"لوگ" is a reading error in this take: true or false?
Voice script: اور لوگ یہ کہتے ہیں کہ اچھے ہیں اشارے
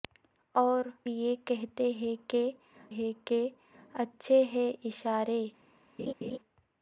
true